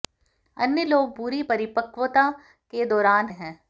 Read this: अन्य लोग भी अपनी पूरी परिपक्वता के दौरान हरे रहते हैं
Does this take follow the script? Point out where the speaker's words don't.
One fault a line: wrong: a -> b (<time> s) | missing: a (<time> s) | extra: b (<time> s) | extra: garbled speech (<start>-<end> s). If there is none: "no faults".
missing: भी अपनी (1.1 s)
missing: हरे रहते (3.3 s)